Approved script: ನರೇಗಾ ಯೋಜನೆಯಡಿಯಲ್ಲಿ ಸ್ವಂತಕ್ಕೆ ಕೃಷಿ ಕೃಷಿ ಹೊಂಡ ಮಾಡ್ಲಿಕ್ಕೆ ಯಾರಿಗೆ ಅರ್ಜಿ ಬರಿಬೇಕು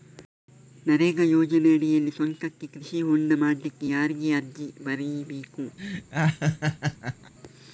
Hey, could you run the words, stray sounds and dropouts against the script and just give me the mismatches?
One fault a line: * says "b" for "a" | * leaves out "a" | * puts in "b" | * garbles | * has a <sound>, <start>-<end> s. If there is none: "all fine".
* leaves out "ಕೃಷಿ"
* has a laugh, 5.8-7.3 s